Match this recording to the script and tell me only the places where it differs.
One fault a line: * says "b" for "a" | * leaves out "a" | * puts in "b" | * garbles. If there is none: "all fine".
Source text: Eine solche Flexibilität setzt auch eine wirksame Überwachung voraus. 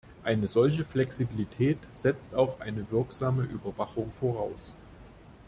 all fine